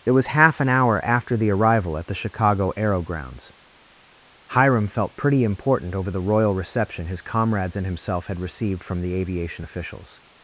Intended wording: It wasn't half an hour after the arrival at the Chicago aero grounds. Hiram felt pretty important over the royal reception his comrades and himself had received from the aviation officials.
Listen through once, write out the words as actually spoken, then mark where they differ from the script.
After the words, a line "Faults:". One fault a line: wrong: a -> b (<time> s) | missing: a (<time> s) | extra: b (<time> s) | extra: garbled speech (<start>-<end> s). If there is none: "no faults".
It was half an hour after the arrival at the Chicago aero grounds. Hiram felt pretty important over the royal reception his comrades and himself had received from the aviation officials.
Faults:
wrong: wasn't -> was (0.1 s)